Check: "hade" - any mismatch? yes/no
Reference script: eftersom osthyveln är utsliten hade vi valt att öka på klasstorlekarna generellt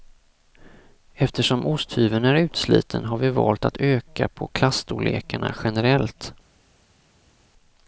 yes